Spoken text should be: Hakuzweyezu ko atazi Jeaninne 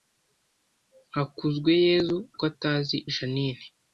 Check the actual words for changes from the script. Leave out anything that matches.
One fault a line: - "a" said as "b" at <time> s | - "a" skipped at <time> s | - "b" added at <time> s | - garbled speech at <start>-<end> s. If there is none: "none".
none